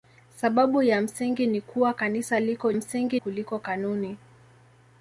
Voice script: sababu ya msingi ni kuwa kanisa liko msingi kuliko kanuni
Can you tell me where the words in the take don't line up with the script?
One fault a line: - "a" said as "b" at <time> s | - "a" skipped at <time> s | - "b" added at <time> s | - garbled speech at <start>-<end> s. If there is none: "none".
none